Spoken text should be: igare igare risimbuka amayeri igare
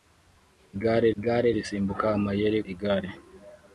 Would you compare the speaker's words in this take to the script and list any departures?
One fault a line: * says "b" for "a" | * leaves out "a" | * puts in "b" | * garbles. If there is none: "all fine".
all fine